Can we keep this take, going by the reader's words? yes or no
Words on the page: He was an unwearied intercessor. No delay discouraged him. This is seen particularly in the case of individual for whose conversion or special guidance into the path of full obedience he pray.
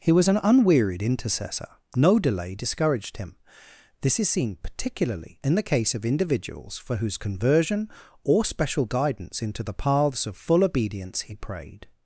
no